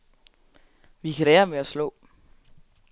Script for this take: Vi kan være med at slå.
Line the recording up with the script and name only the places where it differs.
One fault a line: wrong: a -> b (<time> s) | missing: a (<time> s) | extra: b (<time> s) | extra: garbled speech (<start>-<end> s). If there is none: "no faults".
no faults